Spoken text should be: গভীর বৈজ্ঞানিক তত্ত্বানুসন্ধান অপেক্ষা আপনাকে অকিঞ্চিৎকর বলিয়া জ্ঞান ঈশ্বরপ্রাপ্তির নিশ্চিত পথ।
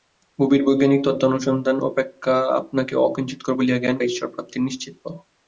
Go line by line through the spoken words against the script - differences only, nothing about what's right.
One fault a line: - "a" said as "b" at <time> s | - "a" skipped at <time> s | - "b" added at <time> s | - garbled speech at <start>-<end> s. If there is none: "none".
none